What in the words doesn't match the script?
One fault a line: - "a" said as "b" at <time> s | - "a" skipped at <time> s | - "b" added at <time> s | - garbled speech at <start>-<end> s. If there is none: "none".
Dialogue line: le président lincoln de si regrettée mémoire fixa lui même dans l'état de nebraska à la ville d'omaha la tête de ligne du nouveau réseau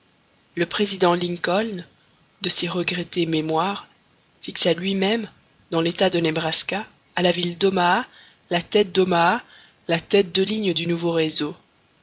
- "d'omaha la tête" added at 8.9 s